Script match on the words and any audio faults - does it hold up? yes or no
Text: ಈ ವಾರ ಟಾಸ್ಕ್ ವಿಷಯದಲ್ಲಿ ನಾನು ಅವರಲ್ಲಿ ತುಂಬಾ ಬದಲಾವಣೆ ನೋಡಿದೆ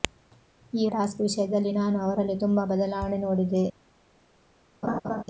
no